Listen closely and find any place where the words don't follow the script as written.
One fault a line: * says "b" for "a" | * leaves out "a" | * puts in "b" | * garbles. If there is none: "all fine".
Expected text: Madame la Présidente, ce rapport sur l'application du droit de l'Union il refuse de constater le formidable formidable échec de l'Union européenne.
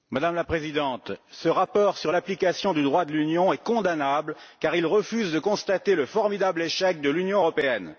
* puts in "est condamnable car"
* leaves out "formidable"